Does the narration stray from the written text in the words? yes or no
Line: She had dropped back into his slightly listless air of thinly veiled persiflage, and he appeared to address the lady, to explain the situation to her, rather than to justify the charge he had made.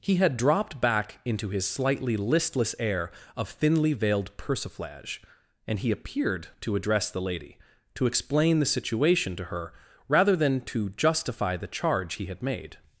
yes